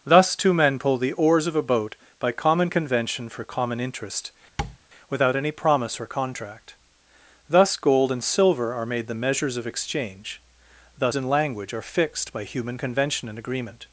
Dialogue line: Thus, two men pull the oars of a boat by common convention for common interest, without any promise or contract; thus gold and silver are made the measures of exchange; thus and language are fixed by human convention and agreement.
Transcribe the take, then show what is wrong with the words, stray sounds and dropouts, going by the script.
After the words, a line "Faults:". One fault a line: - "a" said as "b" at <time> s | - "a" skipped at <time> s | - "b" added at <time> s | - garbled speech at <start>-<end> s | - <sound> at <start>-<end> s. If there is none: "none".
Thus, two men pull the oars of a boat by common convention for common interest, without any promise or contract; thus gold and silver are made the measures of exchange; thus and language are fixed by human convention and agreement.
Faults:
- tap at 4.6-4.8 s